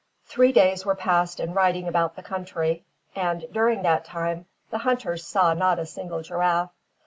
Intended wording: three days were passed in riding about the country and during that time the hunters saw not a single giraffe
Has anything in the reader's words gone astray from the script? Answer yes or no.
no